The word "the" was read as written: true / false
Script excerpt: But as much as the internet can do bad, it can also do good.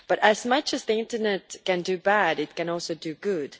true